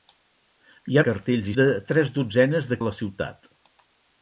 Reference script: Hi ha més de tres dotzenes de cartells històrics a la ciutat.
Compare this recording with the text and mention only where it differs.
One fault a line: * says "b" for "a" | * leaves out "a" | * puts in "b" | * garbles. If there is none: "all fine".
* says "cartells" for "més"
* leaves out "cartells històrics"